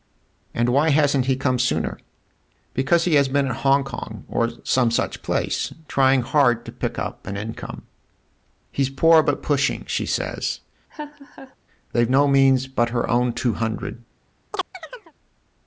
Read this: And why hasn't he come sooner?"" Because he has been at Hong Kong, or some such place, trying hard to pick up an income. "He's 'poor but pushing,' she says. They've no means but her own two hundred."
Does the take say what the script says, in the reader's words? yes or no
yes